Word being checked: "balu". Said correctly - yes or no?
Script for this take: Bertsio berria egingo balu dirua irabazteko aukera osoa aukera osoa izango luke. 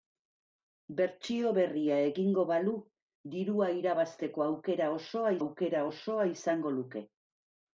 yes